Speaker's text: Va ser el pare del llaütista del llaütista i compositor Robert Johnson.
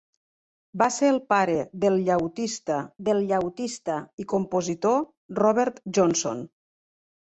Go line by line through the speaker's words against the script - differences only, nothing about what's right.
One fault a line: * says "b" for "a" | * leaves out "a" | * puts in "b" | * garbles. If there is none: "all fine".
all fine